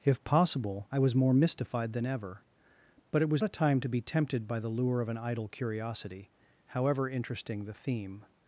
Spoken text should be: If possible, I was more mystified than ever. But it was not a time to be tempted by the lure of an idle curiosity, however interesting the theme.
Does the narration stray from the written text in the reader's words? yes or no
yes